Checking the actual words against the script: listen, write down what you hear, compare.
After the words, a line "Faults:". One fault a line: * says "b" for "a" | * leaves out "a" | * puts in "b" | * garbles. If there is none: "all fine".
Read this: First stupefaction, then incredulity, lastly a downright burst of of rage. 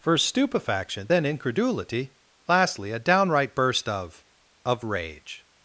First stupefaction, then incredulity, lastly a downright burst of of rage.
Faults:
all fine